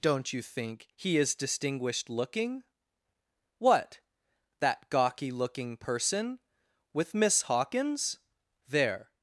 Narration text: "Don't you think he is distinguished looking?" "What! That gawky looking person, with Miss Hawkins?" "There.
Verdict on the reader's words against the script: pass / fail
pass